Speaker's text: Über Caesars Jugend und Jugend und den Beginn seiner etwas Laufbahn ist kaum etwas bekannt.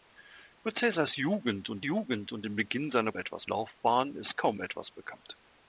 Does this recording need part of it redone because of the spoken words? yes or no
no